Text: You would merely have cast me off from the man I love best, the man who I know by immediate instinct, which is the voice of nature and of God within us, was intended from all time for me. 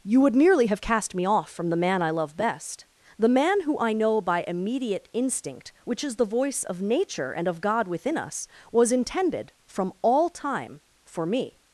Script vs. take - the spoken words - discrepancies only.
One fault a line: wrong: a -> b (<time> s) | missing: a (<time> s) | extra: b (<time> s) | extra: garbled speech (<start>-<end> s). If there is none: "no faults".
no faults